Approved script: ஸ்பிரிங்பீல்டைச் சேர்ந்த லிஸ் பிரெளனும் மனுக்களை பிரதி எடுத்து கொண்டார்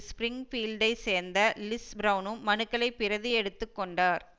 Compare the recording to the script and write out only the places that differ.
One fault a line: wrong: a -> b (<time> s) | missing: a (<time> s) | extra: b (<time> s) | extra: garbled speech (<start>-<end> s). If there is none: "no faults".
no faults